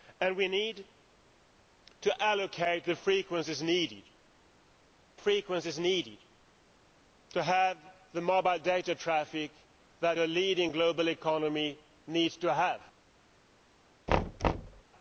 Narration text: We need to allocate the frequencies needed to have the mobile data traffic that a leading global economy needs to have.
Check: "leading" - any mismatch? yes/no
no